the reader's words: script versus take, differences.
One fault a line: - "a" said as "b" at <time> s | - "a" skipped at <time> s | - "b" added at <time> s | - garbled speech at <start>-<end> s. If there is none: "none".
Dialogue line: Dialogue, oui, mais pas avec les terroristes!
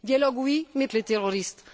- "pas avec" skipped at 0.9 s